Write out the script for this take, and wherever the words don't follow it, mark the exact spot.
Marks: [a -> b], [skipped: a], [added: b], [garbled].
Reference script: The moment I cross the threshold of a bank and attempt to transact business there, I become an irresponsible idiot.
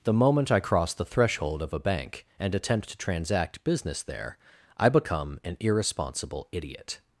The moment I cross the threshold of a bank and attempt to transact business there, I become an irresponsible idiot.